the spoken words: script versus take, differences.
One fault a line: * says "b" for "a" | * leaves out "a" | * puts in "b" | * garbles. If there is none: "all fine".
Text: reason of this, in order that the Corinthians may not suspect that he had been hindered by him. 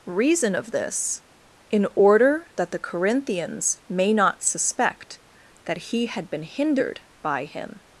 all fine